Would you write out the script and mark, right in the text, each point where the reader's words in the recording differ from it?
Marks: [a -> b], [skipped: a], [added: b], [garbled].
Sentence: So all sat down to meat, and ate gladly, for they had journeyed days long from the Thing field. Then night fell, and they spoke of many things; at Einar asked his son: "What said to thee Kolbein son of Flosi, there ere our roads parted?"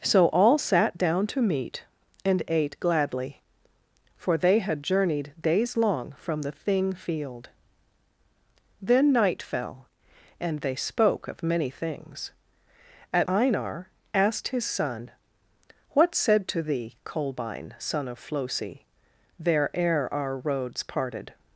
So all sat down to meat, and ate gladly, for they had journeyed days long from the Thing field. Then night fell, and they spoke of many things; at Einar asked his son: "What said to thee Kolbein son of Flosi, there ere our roads parted?"